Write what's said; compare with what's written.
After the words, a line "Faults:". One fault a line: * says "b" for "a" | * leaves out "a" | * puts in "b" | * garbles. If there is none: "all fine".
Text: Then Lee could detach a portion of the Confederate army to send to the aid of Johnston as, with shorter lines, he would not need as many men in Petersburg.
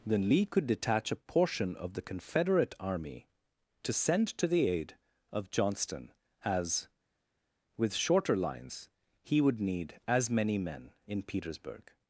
Then Lee could detach a portion of the Confederate army to send to the aid of Johnston as, with shorter lines, he would need as many men in Petersburg.
Faults:
* leaves out "not"